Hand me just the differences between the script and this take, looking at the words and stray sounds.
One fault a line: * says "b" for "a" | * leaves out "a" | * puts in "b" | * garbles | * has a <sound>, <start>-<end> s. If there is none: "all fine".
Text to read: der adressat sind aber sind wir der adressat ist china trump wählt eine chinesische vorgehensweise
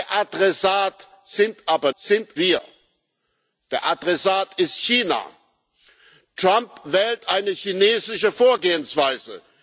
all fine